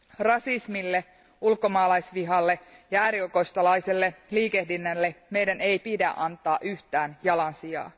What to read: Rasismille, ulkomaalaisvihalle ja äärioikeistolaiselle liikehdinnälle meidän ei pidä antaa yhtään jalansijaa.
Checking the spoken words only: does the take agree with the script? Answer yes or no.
yes